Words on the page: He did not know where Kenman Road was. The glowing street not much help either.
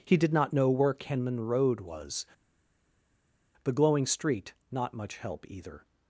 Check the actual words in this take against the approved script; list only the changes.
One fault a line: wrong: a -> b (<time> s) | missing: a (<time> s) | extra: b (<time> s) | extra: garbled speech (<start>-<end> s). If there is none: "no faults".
no faults